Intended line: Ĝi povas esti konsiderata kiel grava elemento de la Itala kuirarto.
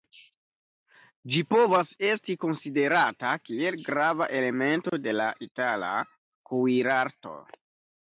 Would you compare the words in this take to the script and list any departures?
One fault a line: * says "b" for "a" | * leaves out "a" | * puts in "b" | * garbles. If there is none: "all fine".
all fine